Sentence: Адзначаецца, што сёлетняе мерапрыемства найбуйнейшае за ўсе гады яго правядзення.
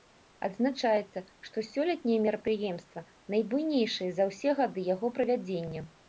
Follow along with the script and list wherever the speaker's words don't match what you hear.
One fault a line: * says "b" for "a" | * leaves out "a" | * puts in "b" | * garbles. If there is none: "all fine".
all fine